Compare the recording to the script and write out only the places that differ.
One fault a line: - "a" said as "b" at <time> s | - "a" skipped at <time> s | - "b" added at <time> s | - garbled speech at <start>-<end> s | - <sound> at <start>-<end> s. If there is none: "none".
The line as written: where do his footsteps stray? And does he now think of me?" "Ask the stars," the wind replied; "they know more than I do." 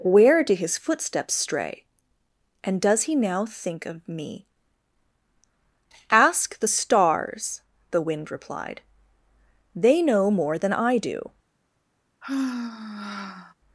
- sigh at 12.2-13.5 s